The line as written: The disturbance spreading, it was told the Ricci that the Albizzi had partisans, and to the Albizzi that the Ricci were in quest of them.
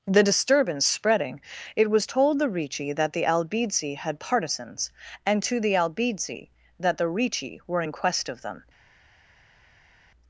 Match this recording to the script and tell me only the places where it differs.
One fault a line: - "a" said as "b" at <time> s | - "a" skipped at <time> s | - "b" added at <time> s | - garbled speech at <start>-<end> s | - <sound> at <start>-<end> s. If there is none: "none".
none